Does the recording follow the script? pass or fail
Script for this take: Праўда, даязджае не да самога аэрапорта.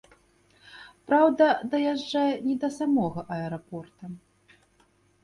pass